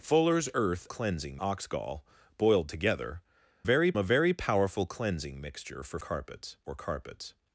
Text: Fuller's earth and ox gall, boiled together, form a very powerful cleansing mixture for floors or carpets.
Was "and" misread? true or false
true